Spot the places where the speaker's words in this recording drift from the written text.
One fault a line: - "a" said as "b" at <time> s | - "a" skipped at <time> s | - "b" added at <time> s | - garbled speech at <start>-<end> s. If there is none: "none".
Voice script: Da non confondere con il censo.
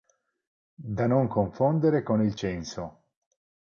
none